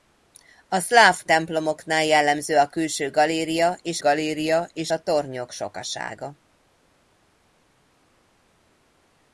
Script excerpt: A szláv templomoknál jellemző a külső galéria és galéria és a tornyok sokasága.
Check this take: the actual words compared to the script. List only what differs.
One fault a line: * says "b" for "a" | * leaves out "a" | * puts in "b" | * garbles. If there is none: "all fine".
all fine